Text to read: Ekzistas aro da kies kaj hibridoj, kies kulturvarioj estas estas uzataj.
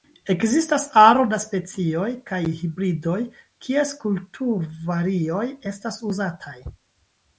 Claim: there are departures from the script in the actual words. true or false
true